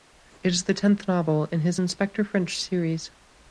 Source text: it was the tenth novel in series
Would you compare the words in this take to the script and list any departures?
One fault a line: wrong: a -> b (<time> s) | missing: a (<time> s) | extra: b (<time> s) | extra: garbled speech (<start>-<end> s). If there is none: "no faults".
wrong: was -> is (0.5 s)
extra: his inspector french (1.6 s)